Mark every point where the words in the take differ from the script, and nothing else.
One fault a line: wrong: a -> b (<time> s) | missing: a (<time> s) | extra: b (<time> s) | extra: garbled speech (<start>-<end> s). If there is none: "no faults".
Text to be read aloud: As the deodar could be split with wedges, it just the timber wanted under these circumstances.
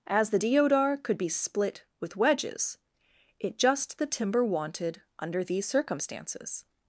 no faults